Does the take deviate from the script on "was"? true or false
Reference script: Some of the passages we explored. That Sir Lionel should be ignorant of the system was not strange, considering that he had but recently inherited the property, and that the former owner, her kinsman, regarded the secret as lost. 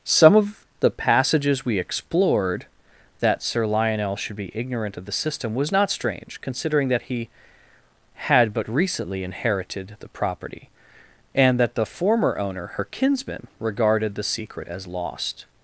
false